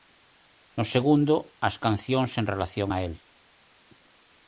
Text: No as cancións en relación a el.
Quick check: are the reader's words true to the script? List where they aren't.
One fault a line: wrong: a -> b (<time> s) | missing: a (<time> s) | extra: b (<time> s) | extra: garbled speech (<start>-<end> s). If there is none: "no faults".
extra: segundo (0.9 s)